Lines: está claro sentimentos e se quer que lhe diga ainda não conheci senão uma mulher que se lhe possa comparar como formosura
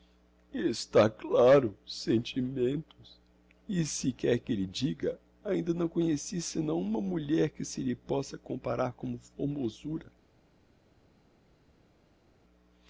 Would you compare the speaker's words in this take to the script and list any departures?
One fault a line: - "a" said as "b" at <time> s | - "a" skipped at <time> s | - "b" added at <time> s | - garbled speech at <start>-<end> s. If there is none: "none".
none